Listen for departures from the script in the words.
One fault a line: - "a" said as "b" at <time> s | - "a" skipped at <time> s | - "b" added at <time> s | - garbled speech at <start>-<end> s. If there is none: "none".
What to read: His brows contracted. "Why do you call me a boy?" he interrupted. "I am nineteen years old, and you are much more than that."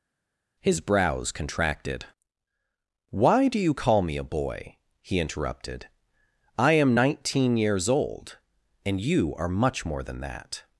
none